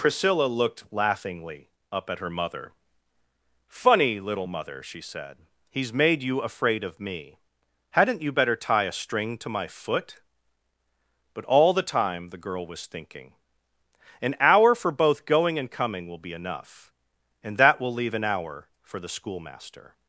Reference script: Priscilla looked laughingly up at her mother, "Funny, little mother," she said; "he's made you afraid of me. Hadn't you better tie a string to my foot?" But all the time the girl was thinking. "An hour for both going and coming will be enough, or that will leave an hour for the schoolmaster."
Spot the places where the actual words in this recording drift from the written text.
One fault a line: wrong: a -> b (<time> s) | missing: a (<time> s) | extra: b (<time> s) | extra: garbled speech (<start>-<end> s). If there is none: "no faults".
wrong: or -> and (17.4 s)